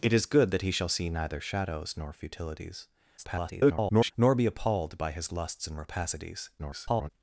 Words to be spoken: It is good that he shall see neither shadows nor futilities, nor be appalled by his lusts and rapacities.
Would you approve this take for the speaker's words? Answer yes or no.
no